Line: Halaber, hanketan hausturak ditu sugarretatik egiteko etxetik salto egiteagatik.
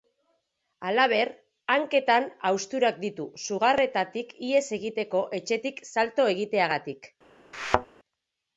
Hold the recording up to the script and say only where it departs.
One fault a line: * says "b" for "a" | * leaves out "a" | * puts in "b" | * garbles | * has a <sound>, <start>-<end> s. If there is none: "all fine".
* puts in "ihes"
* has a thud, 7.5-7.9 s